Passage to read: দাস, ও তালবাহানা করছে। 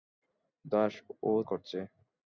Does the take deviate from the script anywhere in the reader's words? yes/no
yes